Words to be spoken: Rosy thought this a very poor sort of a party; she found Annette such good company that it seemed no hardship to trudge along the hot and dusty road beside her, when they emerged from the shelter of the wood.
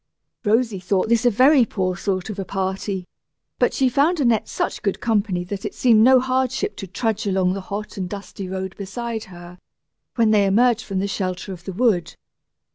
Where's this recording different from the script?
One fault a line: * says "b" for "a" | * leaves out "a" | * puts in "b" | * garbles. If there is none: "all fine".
* puts in "but"